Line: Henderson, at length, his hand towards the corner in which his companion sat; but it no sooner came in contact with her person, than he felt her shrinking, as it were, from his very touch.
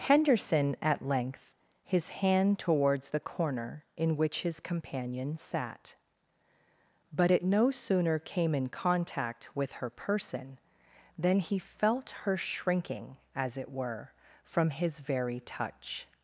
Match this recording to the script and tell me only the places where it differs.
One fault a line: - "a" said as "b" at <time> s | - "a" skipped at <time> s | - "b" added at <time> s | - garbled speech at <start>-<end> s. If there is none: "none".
none